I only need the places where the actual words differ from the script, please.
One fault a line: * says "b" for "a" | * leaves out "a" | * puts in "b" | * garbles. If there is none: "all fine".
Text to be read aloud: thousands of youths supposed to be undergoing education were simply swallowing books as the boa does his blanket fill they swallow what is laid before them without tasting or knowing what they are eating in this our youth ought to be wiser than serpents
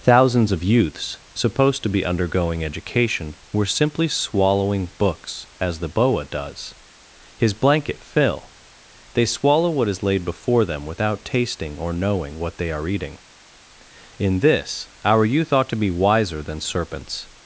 all fine